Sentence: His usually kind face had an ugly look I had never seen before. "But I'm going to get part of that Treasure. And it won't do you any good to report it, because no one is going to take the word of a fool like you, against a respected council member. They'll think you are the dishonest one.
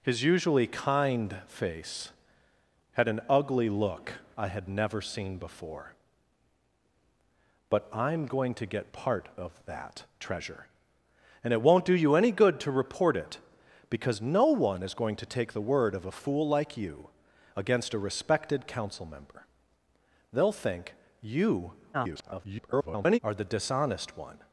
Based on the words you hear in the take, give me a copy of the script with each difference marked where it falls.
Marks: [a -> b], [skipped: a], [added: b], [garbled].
His usually kind face had an ugly look I had never seen before. "But I'm going to get part of that Treasure. And it won't do you any good to report it, because no one is going to take the word of a fool like you, against a respected council member. They'll think you [garbled] are the dishonest one.